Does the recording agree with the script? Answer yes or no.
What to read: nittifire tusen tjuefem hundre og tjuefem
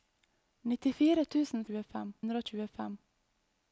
yes